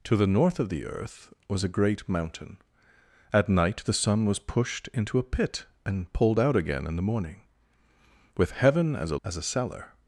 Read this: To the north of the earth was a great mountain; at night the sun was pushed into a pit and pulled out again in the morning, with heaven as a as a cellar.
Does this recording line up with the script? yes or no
yes